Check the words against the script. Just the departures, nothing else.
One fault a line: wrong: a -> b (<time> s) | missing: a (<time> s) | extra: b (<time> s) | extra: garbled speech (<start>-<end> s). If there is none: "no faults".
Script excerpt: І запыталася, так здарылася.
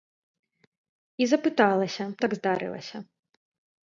no faults